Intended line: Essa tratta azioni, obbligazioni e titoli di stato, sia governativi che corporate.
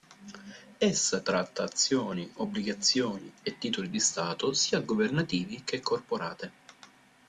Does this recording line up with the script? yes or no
yes